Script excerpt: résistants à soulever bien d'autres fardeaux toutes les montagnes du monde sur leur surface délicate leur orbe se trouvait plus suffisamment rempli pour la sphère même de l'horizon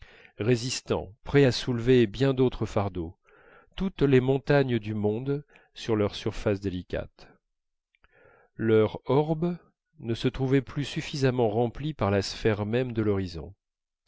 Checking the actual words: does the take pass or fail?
fail